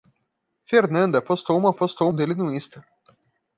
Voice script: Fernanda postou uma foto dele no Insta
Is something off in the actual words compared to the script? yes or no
yes